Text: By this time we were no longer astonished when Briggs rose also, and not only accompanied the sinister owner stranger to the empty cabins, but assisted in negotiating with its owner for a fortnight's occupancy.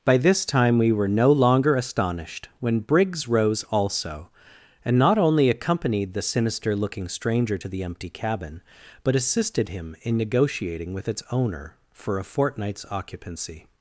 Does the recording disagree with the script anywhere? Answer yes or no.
yes